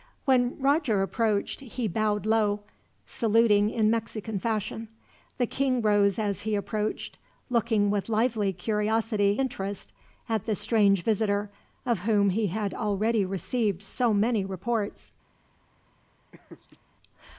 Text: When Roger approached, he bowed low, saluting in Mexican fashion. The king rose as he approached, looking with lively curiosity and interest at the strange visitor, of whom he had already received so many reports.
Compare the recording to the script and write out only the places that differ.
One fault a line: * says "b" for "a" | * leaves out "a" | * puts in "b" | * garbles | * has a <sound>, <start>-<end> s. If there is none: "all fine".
* leaves out "and"
* has a laugh, 16.3-16.8 s